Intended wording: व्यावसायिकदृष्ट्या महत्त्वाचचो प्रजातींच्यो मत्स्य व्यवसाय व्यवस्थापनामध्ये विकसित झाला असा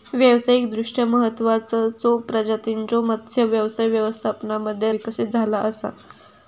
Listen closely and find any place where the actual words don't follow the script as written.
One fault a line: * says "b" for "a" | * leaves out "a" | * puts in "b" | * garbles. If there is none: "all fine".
all fine